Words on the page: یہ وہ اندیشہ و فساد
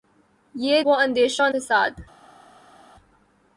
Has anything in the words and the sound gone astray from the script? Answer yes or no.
no